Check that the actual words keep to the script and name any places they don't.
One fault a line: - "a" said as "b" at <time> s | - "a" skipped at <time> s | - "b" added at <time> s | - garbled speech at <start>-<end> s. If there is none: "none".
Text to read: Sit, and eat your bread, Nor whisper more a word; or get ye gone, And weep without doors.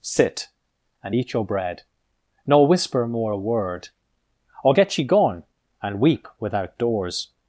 none